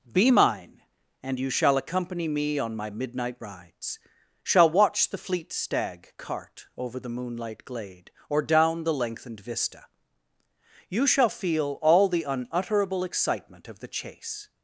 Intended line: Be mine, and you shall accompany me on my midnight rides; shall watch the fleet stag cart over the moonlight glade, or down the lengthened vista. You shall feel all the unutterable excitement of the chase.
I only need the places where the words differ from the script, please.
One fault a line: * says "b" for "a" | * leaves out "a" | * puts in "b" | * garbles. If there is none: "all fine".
all fine